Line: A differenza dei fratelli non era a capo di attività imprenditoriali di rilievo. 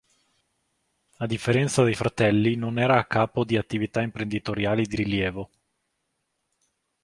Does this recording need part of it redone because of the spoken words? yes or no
no